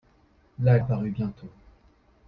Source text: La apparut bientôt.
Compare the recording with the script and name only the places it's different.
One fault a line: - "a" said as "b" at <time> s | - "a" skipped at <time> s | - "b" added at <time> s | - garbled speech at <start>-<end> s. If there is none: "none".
none